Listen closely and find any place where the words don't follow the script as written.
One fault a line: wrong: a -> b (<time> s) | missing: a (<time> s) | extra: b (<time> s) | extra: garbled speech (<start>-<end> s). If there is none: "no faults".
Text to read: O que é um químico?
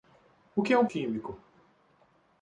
no faults